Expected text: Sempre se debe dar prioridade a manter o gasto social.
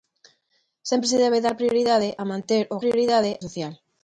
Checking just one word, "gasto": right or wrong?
wrong